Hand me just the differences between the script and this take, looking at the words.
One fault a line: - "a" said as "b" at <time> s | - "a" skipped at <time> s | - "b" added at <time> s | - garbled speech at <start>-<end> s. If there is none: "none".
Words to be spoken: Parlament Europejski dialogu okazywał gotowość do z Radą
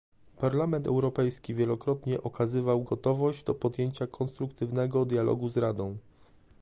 - "dialogu" said as "wielokrotnie" at 1.6 s
- "podjęcia konstruktywnego dialogu" added at 3.5 s